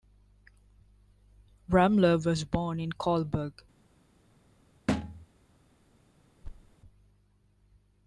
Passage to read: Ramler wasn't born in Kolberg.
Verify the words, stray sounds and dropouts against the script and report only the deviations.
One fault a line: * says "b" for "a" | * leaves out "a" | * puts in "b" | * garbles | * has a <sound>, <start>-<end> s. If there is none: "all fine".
* says "was" for "wasn't"
* has a thud, 4.9-5.3 s
* has a thud, 6.4-6.8 s